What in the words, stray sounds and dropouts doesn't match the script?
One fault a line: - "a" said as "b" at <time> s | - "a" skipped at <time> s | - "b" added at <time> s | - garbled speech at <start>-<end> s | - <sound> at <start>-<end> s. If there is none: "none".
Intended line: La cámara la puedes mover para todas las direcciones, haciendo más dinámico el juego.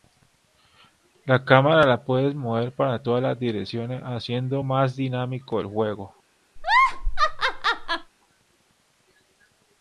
- laugh at 6.6-8.1 s